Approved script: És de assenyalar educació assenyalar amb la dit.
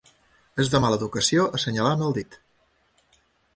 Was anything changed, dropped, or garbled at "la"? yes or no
yes